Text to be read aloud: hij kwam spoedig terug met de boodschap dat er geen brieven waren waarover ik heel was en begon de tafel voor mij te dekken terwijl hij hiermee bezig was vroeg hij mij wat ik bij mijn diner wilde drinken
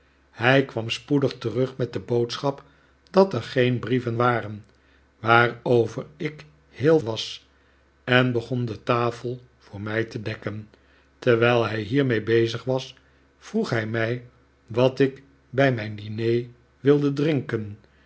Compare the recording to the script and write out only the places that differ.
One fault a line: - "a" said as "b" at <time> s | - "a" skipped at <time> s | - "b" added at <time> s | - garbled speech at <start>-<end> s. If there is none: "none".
none